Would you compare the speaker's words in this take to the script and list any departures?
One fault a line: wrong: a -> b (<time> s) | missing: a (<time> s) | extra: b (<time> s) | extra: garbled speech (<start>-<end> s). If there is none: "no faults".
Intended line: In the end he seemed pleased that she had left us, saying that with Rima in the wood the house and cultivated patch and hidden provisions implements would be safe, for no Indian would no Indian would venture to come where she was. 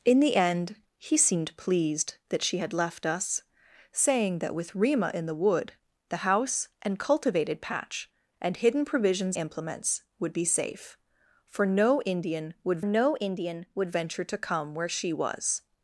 no faults